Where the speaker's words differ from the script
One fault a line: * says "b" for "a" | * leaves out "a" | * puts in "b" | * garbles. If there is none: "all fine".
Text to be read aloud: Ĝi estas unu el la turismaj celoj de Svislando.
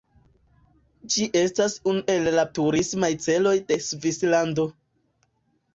all fine